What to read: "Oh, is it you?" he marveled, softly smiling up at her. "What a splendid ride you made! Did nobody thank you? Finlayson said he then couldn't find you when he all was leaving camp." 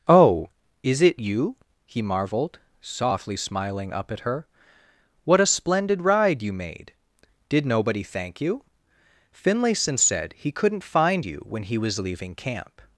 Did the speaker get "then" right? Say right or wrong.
wrong